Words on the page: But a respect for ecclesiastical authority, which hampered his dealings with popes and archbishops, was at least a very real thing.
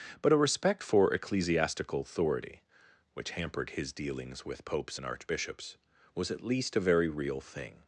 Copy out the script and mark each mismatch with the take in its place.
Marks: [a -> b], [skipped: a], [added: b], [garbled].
But a respect for ecclesiastical authority, which hampered his dealings with popes and archbishops, was at least a very real thing.